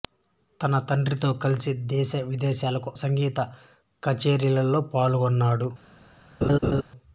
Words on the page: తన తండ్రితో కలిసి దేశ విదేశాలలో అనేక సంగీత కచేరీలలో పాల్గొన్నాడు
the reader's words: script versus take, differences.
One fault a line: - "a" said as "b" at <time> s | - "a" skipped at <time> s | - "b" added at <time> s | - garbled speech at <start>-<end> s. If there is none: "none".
- "అనేక" skipped at 2.9 s